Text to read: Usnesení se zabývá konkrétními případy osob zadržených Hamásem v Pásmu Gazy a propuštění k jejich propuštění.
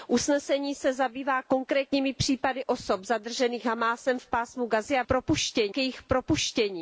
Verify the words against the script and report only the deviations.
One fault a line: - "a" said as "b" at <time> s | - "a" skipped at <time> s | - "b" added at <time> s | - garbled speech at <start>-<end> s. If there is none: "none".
none